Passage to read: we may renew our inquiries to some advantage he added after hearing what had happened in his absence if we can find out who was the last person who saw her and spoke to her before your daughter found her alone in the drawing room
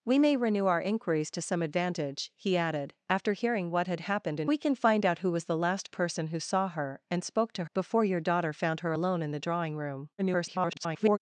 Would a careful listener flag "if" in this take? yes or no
yes